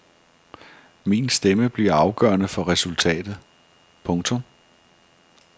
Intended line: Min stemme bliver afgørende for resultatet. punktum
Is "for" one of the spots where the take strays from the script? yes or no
no